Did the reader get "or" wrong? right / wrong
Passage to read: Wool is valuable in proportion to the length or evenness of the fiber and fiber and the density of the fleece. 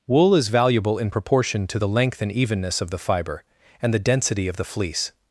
wrong